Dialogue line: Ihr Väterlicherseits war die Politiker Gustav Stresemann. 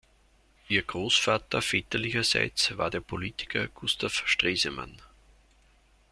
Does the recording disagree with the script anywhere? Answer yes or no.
yes